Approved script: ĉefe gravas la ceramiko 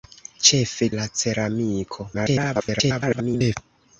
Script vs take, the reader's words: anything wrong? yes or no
yes